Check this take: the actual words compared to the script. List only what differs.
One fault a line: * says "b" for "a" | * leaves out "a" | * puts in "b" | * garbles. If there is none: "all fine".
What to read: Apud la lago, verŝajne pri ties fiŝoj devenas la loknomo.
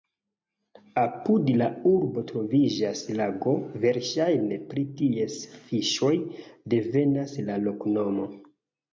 * puts in "urbo troviĝas"